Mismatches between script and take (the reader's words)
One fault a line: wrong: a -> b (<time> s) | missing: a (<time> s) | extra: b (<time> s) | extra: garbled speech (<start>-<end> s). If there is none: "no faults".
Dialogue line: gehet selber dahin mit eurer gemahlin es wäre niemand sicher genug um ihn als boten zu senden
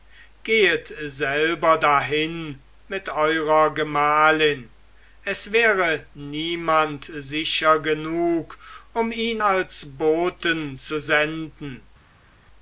no faults